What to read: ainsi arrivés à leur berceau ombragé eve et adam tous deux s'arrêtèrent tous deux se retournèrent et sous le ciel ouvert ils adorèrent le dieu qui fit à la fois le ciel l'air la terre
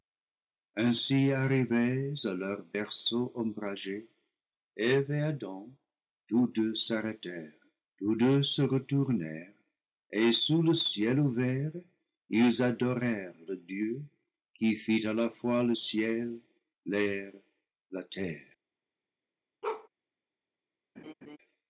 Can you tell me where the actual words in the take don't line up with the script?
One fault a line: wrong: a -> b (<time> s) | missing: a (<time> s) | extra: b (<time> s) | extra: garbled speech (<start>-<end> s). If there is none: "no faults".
no faults